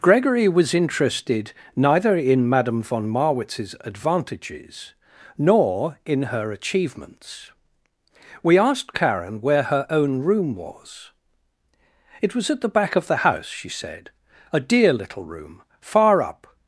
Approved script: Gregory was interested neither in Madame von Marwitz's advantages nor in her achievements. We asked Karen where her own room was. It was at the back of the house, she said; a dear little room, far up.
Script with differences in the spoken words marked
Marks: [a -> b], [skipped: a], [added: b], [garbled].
Gregory was interested neither in Madame von Marwitz's advantages nor in her achievements. We asked Karen where her own room was. It was at the back of the house, she said; a dear little room, far up.